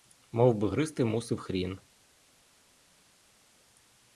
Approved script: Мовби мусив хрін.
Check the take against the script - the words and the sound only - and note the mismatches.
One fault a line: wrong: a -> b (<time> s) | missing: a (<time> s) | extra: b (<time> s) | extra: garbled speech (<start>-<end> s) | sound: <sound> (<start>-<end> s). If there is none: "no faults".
extra: гризти (0.7 s)